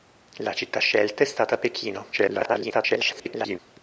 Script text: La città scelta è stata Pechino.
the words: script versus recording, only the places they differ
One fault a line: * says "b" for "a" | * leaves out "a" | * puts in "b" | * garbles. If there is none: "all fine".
* garbles